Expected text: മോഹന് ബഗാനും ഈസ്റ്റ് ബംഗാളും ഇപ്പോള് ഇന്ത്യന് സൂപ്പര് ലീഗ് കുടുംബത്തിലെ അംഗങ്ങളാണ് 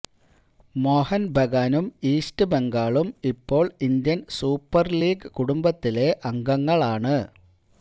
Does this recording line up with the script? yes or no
yes